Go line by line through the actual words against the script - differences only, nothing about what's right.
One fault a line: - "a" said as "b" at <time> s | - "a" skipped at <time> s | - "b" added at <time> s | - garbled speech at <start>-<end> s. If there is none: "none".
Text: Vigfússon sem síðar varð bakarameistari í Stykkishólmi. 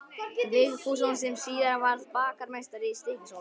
none